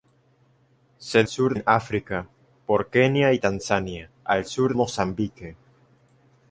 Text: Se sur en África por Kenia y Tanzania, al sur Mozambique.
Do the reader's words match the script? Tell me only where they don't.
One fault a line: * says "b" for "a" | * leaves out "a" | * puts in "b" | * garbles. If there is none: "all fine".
all fine